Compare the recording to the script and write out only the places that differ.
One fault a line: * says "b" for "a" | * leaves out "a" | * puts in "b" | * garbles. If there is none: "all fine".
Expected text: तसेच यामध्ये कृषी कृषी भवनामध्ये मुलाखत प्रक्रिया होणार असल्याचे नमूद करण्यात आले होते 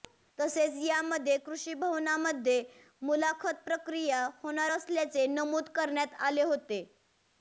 * leaves out "कृषी"